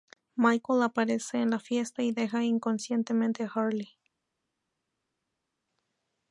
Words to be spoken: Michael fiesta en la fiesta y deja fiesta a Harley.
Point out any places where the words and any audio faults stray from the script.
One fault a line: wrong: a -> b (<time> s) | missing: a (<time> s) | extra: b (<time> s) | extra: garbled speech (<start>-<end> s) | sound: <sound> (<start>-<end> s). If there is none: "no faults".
wrong: fiesta -> aparece (0.8 s)
wrong: fiesta -> inconsciente (2.4 s)